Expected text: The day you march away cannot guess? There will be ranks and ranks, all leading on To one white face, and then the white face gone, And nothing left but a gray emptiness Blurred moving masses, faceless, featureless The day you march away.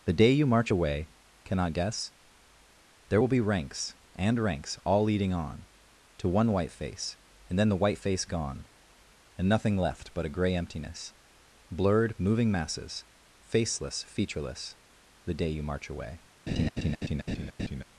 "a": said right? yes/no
yes